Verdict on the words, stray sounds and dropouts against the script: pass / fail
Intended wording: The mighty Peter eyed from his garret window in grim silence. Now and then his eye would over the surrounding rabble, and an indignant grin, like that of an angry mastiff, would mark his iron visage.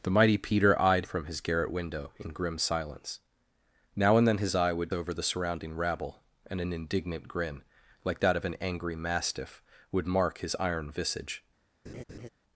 fail